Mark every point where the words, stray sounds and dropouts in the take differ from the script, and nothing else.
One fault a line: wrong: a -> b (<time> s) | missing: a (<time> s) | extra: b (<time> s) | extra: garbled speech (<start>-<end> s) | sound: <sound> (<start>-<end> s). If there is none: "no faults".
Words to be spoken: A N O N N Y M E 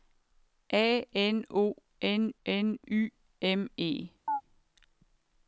sound: chirp (4.3-4.4 s)